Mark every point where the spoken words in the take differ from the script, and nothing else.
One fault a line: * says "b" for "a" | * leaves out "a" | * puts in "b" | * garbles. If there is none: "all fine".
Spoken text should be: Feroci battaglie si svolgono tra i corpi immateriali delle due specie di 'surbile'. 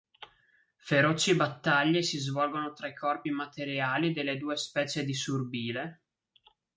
all fine